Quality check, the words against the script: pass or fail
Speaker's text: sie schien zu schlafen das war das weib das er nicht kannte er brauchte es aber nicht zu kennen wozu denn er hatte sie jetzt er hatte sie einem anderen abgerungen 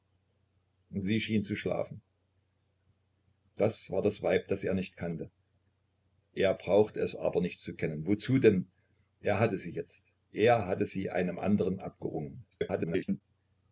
fail